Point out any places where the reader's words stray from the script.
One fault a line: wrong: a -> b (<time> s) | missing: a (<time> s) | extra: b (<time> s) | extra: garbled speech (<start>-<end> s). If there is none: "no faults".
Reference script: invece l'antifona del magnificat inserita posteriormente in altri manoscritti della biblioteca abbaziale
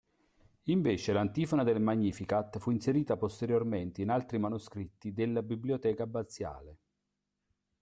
extra: fu (2.6 s)